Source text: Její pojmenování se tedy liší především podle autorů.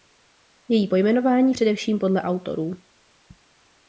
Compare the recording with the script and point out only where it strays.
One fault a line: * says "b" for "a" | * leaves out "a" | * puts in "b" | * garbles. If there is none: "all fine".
* leaves out "se tedy liší"